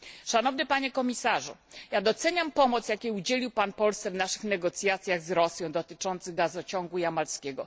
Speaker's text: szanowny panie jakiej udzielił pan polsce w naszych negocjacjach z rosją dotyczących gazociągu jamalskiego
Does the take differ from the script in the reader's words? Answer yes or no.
yes